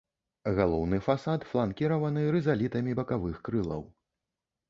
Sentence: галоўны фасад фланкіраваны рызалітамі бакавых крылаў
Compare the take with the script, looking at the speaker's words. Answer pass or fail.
pass